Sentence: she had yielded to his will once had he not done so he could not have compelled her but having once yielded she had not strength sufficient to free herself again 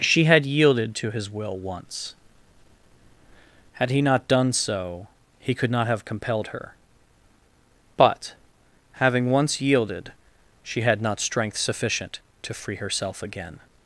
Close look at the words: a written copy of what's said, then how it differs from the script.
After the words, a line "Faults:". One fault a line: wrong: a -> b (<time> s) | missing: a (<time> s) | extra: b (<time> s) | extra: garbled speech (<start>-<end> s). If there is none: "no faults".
she had yielded to his will once had he not done so he could not have compelled her but having once yielded she had not strength sufficient to free herself again
Faults:
no faults